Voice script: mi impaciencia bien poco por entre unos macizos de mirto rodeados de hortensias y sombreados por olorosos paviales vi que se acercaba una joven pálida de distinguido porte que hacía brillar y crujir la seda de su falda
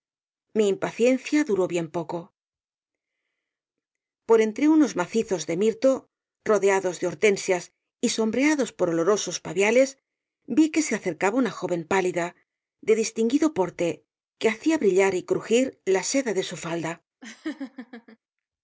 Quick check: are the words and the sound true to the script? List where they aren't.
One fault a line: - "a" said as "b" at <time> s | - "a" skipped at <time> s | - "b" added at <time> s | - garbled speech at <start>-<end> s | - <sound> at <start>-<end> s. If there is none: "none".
- "duró" added at 1.5 s
- laugh at 17.2-18.2 s